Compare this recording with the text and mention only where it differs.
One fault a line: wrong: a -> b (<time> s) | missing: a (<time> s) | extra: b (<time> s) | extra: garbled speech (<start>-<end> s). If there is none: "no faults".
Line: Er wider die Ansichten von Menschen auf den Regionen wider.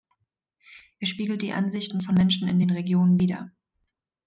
wrong: wider -> spiegelt (1.1 s)
wrong: auf -> in (2.5 s)